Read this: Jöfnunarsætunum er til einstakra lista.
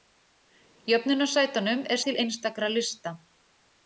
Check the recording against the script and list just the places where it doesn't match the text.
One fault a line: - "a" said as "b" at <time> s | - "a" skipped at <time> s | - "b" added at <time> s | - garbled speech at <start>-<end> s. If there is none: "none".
none